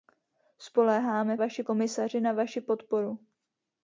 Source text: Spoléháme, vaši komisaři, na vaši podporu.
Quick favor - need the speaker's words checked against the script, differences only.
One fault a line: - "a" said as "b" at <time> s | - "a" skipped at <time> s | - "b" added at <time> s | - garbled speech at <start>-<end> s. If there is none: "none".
none